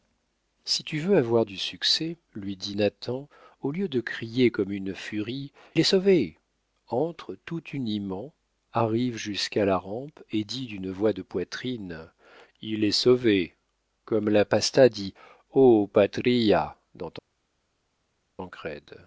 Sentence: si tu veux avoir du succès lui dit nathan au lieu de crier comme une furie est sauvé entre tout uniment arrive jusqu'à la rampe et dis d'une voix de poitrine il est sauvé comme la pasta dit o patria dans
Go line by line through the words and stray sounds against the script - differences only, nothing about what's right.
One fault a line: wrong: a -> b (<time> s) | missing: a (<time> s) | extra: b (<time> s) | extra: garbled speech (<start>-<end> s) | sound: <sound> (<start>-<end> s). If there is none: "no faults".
no faults